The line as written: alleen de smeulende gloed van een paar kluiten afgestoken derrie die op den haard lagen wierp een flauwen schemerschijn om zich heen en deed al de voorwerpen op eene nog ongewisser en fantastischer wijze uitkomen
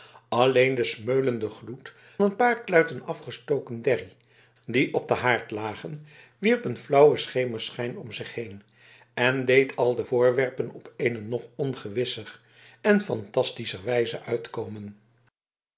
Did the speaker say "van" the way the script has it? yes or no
no